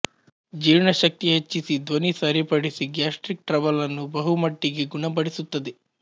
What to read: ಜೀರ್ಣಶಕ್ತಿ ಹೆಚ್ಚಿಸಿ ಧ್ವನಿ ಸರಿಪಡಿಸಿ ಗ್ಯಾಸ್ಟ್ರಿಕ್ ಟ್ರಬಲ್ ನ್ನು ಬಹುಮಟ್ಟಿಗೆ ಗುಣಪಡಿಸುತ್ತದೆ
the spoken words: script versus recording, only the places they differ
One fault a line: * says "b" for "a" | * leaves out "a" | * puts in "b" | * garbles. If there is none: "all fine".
all fine